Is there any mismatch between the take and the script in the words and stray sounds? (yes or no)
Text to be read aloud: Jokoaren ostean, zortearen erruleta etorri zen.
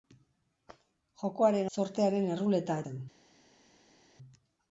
yes